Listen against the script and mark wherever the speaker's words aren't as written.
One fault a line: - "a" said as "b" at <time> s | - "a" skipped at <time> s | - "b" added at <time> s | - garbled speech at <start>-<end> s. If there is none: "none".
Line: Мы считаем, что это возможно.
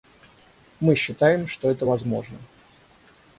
none